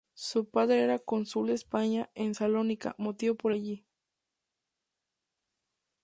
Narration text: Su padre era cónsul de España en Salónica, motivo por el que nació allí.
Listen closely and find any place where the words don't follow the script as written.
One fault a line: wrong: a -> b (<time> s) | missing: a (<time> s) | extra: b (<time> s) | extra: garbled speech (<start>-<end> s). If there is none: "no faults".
missing: el que nació (3.5 s)